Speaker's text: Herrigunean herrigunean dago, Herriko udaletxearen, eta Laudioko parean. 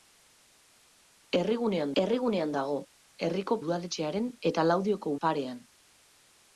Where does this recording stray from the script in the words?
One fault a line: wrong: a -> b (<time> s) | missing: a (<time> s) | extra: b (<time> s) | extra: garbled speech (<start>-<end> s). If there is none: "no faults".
no faults